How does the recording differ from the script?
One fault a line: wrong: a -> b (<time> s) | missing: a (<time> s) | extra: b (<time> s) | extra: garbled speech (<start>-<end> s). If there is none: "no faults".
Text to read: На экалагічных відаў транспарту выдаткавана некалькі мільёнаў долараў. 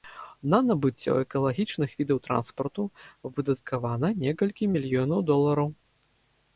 extra: набыццё (0.7 s)